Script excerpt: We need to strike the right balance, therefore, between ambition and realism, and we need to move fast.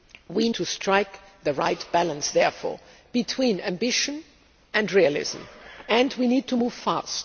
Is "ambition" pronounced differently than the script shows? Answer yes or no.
no